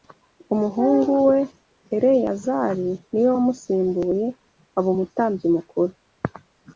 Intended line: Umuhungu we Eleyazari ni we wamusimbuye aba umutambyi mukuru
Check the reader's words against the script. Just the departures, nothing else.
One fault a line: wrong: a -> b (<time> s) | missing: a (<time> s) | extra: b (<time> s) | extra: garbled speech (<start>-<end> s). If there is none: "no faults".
no faults